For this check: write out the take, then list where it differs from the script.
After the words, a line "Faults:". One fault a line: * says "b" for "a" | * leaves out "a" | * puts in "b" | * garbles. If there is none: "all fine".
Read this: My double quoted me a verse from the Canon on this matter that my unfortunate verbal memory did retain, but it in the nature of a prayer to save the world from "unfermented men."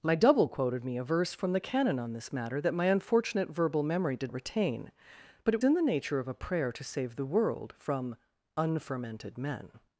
My double quoted me a verse from the Canon on this matter that my unfortunate verbal memory did retain, but it in the nature of a prayer to save the world from "unfermented men."
Faults:
all fine